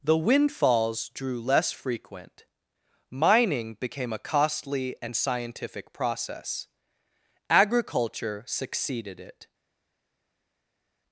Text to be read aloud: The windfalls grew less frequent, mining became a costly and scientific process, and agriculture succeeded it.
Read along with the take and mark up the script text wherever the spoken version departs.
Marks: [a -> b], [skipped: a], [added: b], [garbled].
The windfalls [grew -> drew] less frequent, mining became a costly and scientific process, [skipped: and] agriculture succeeded it.